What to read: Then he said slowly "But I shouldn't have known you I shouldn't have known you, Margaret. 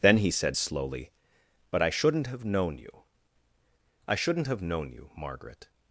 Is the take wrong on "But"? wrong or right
right